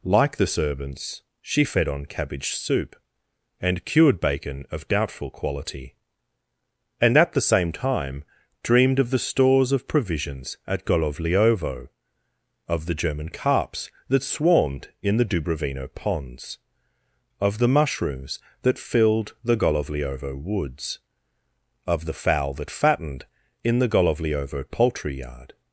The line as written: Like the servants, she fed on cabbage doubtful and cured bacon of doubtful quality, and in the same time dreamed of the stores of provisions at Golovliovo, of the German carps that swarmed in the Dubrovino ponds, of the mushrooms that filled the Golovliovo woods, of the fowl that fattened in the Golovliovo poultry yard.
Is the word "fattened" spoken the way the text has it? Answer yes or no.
yes